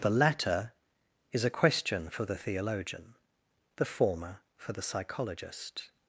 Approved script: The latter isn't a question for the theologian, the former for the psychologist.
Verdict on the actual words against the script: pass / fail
fail